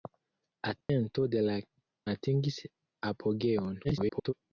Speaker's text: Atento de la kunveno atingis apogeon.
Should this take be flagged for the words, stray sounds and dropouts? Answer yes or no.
yes